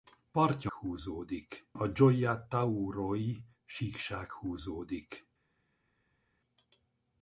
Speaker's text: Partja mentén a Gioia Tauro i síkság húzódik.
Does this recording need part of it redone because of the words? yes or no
yes